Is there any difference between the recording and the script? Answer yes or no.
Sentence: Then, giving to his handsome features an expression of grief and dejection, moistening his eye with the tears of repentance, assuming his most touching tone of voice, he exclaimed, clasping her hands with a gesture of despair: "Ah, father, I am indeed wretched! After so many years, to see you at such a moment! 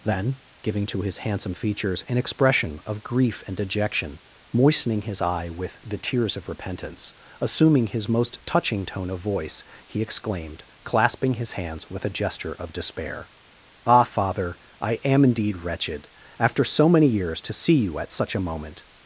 yes